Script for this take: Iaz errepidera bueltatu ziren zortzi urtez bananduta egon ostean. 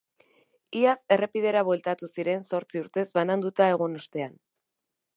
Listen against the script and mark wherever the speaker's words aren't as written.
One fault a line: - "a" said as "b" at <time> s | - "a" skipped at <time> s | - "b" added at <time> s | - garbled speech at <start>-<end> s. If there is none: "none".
none